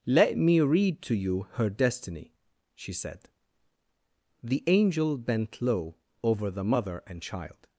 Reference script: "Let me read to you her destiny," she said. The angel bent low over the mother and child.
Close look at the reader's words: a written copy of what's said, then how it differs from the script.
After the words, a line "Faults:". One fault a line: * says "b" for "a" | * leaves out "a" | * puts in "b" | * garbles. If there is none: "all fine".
"Let me read to you her destiny," she said. The angel bent low over the mother and child.
Faults:
all fine